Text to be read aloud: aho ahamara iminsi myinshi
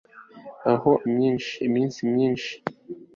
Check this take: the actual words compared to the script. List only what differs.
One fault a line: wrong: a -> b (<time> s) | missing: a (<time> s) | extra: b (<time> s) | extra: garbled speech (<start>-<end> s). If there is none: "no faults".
wrong: ahamara -> myinshi (1.1 s)